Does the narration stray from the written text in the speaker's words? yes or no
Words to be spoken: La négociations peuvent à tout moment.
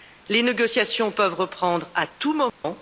yes